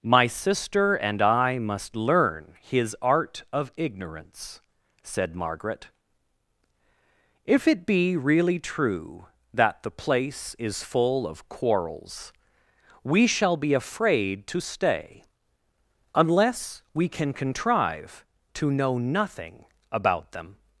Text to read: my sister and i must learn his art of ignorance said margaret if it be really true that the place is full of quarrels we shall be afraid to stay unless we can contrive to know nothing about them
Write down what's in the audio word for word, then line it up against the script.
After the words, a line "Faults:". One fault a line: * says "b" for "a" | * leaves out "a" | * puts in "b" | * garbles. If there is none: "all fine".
my sister and i must learn his art of ignorance said margaret if it be really true that the place is full of quarrels we shall be afraid to stay unless we can contrive to know nothing about them
Faults:
all fine